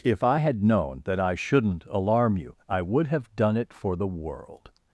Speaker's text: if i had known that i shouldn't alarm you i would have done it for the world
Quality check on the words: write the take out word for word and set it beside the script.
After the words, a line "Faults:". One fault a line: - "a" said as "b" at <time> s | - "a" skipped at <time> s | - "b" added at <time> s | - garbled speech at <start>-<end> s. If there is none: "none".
if i had known that i shouldn't alarm you i would have done it for the world
Faults:
none